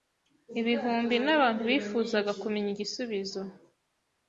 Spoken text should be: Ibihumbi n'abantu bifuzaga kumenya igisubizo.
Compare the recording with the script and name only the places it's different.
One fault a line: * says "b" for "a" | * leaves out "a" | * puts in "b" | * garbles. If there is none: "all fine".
all fine